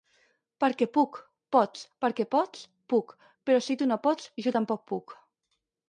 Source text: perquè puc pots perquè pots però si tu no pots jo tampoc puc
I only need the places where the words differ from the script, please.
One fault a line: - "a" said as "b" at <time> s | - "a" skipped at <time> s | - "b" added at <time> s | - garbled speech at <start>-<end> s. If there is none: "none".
- "puc" added at 2.9 s